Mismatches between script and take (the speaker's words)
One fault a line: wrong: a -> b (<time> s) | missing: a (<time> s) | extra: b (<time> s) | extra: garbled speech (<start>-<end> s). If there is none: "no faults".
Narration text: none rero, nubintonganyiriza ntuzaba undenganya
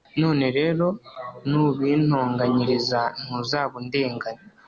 no faults